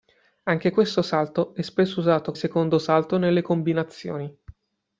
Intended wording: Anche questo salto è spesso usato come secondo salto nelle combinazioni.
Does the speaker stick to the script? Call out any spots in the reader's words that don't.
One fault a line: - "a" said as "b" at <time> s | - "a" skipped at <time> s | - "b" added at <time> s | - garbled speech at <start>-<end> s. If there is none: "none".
- "come" skipped at 2.3 s